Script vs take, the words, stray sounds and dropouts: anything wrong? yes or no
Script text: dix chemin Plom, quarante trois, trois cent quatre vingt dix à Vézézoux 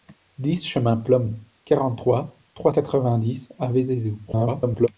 yes